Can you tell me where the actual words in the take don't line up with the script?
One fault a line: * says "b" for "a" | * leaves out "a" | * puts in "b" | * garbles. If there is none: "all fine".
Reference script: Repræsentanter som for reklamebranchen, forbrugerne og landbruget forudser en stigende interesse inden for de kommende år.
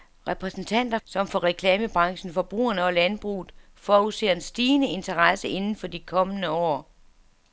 all fine